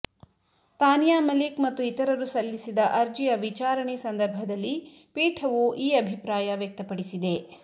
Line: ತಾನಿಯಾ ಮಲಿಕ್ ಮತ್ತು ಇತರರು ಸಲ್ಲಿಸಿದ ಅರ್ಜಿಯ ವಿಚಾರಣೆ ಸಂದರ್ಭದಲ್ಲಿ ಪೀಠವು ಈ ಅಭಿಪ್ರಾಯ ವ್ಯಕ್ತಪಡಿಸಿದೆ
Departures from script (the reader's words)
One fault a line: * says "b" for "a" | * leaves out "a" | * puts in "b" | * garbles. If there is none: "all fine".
all fine